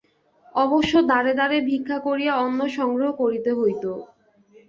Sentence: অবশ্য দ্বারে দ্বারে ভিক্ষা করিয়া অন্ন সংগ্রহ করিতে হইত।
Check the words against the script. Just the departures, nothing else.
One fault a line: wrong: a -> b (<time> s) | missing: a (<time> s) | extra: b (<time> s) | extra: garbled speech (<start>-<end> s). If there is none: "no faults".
no faults